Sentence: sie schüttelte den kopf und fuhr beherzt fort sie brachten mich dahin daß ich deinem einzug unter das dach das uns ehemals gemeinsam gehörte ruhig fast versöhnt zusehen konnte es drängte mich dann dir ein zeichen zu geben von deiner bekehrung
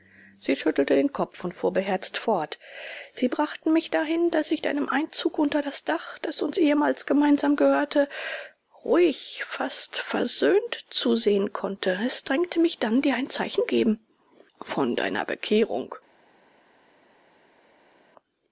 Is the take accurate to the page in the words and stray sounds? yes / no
no